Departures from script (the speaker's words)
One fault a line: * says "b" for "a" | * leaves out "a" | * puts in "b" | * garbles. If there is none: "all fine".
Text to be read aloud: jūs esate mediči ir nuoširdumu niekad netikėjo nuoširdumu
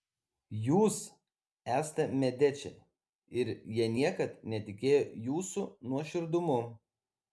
* says "jie" for "nuoširdumu"
* puts in "jūsų"